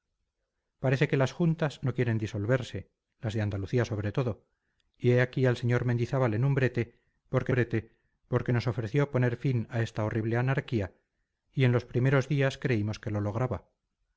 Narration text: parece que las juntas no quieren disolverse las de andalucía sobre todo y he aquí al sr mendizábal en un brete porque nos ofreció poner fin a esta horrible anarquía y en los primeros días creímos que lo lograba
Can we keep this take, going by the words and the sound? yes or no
no